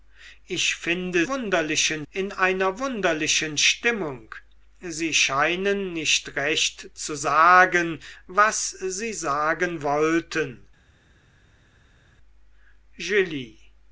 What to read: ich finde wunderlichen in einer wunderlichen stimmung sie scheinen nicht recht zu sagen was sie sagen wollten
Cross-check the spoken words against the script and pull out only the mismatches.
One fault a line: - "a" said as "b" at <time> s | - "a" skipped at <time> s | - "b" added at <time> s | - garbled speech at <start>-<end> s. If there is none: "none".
none